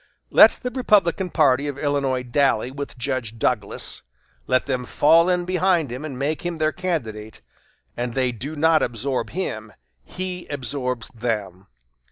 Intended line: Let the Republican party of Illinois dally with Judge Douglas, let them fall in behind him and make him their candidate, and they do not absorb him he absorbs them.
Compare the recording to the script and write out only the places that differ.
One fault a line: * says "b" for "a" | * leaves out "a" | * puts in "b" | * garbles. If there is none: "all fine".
all fine